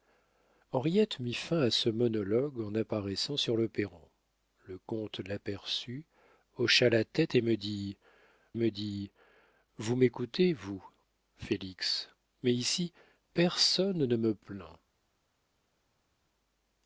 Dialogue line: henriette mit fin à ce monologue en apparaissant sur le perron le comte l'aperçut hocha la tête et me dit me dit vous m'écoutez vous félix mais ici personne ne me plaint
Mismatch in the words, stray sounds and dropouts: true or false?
false